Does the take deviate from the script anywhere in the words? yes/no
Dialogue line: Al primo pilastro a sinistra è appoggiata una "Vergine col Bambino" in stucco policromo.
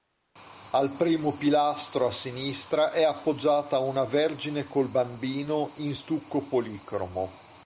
no